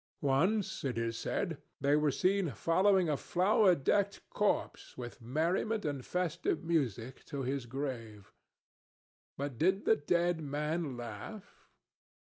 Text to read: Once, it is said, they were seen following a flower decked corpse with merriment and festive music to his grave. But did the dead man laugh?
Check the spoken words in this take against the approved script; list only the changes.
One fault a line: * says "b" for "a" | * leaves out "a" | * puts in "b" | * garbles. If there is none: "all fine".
all fine